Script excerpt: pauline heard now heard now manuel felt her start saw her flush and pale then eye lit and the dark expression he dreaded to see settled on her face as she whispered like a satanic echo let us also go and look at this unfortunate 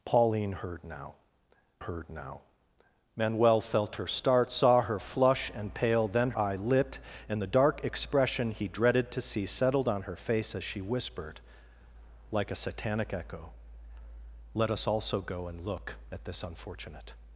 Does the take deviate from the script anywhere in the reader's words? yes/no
no